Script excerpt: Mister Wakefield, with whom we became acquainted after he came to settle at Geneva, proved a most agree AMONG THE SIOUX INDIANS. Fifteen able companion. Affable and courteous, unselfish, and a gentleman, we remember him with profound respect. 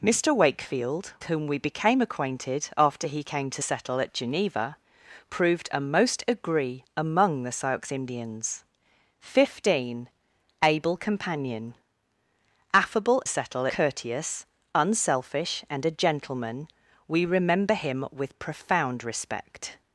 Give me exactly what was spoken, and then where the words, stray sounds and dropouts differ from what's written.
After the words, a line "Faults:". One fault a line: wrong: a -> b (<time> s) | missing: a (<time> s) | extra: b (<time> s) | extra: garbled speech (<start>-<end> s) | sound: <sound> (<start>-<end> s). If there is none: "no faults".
Mister Wakefield, whom we became acquainted after he came to settle at Geneva, proved a most agree AMONG THE SIOUX INDIANS. Fifteen able companion. Affable settle courteous, unselfish, and a gentleman, we remember him with profound respect.
Faults:
missing: with (1.1 s)
wrong: and -> settle (13.3 s)